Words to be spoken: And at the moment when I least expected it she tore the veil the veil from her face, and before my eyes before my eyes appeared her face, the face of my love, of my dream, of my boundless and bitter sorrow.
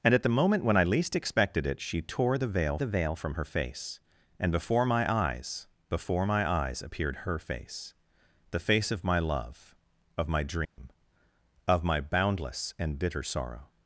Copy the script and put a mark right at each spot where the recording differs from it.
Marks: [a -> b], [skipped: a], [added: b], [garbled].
And at the moment when I least expected it she tore the veil the veil from her face, and before my eyes before my eyes appeared her face, the face of my love, of my dream, of my boundless and bitter sorrow.